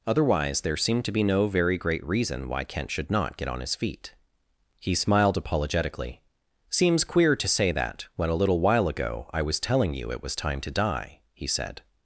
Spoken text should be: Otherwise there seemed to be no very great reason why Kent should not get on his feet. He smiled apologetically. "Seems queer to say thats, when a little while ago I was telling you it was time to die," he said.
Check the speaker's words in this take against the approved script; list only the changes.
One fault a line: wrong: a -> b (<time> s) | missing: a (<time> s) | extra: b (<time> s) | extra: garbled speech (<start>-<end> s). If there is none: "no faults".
wrong: thats -> that (7.7 s)